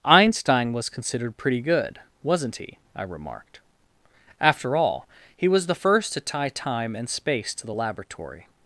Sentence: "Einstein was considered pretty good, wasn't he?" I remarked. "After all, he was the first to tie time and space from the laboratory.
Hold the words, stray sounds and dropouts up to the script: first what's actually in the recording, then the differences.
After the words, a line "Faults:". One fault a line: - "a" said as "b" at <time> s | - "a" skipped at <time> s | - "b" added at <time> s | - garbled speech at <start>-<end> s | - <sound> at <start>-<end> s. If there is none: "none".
"Einstein was considered pretty good, wasn't he?" I remarked. "After all, he was the first to tie time and space to the laboratory.
Faults:
- "from" said as "to" at 7.5 s